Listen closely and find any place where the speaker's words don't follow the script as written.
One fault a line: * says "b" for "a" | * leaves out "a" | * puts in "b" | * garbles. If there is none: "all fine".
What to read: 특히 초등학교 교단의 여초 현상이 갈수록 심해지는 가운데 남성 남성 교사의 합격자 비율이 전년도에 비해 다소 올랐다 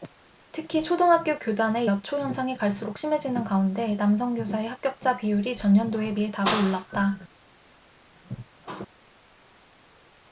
* leaves out "남성"